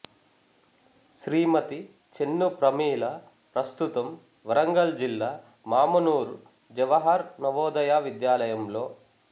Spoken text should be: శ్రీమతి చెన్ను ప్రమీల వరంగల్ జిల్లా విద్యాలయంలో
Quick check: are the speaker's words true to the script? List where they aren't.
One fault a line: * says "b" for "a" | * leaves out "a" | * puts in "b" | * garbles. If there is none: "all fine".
* puts in "ప్రస్తుతం"
* puts in "మామునూరు జవహర్ నవోదయ"